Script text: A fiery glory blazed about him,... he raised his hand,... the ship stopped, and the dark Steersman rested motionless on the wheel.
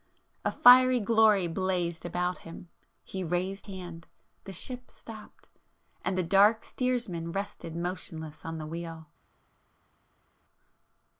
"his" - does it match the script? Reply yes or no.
no